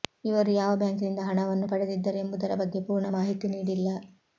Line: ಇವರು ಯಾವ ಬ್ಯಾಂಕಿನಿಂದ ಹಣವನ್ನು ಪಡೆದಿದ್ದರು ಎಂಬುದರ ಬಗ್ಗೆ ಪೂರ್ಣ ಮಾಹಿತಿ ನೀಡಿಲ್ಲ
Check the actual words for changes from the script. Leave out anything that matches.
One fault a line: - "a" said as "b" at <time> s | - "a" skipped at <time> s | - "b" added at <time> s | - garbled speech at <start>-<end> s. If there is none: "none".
none